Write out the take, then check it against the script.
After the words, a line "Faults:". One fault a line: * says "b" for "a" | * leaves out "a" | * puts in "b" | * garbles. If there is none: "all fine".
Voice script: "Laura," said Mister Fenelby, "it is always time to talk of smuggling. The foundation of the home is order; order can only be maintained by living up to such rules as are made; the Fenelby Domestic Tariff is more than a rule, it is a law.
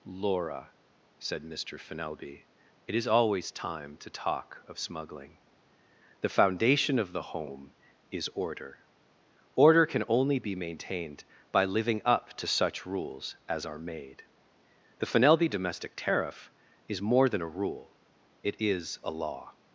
"Laura," said Mister Fenelby, "it is always time to talk of smuggling. The foundation of the home is order; order can only be maintained by living up to such rules as are made; the Fenelby Domestic Tariff is more than a rule, it is a law.
Faults:
all fine